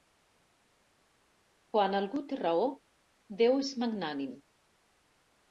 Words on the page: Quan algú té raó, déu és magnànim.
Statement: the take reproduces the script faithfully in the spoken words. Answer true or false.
true